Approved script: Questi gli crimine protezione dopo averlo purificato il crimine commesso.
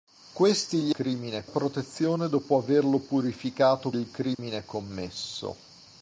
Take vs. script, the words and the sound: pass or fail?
fail